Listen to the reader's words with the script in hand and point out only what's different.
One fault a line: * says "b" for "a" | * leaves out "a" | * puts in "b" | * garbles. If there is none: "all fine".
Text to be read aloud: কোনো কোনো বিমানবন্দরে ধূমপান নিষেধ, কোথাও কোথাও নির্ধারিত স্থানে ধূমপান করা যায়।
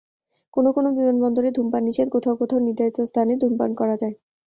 all fine